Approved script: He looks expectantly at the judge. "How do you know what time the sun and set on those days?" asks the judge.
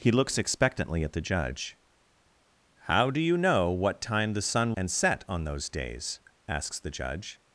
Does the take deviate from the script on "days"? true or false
false